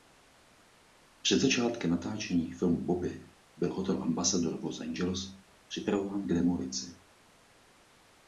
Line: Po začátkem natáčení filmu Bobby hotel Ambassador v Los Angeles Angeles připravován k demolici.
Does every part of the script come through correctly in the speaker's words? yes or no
no